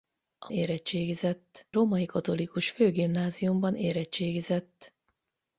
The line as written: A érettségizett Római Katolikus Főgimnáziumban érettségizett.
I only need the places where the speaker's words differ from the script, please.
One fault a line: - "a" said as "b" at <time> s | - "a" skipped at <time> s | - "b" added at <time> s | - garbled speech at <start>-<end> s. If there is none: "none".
none